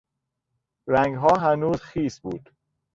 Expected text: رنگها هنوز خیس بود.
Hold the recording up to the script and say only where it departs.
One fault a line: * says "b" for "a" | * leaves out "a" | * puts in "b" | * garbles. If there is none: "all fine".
all fine